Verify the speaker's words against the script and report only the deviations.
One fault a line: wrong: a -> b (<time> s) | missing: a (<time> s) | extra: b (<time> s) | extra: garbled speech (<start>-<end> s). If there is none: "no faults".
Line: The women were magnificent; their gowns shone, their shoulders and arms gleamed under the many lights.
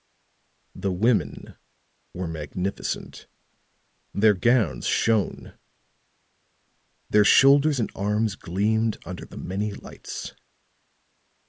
no faults